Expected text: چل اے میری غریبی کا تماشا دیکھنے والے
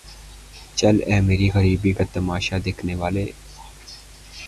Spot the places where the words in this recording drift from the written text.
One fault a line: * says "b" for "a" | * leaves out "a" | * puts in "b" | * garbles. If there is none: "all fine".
all fine